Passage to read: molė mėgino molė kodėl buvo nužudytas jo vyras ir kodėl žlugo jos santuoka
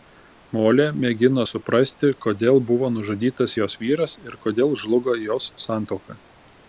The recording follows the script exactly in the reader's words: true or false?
false